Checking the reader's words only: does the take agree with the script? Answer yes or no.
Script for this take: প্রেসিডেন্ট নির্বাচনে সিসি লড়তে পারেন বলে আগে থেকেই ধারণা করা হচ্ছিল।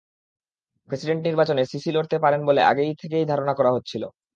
yes